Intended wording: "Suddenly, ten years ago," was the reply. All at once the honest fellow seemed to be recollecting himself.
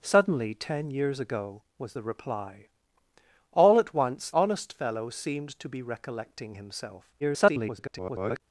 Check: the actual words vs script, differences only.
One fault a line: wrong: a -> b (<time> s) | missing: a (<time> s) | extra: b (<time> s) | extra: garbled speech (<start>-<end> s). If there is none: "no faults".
missing: the (4.3 s)
extra: garbled speech (7.2-8.4 s)